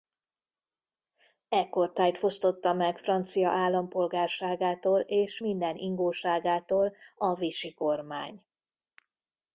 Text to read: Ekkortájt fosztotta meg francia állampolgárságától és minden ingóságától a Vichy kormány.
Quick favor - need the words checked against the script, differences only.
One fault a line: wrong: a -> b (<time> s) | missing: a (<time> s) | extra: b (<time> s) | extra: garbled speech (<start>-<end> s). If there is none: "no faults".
no faults